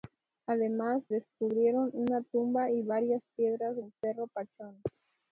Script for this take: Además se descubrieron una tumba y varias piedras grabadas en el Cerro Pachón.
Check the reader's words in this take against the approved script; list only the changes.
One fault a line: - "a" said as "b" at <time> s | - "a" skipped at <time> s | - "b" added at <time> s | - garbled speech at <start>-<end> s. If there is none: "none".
- "se" skipped at 1.0 s
- "grabadas en" skipped at 3.8 s